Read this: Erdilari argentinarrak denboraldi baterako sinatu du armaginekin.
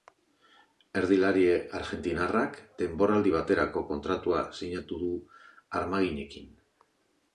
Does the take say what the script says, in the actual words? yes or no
no